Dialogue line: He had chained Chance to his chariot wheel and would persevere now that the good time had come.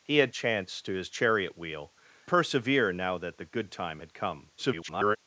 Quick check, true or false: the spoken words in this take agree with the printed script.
false